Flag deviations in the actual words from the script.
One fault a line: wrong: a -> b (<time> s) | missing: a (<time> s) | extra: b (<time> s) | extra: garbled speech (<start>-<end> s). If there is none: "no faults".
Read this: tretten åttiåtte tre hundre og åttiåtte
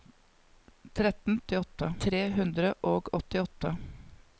no faults